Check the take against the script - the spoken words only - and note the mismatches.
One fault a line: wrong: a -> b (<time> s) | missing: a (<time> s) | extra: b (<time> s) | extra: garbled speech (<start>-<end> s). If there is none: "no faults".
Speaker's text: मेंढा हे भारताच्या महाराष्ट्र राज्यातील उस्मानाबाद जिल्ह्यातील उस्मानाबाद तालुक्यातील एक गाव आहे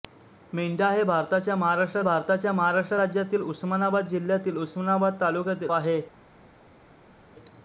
extra: भारताच्या महाराष्ट्र (2.0 s)
missing: एक गाव (5.7 s)